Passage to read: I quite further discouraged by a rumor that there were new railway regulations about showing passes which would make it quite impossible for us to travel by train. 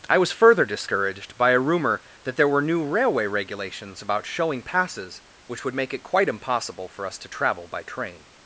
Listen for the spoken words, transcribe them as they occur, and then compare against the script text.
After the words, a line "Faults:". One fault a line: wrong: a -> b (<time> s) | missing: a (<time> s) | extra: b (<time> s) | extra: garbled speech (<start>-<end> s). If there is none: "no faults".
I was further discouraged by a rumor that there were new railway regulations about showing passes which would make it quite impossible for us to travel by train.
Faults:
wrong: quite -> was (0.2 s)